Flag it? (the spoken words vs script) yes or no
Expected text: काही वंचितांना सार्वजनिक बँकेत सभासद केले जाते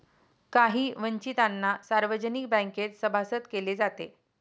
no